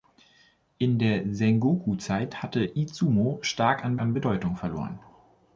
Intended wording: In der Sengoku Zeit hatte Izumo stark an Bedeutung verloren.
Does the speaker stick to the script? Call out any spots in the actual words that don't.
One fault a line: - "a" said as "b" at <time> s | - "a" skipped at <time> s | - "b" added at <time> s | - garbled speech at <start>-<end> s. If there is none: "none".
- "an" added at 4.0 s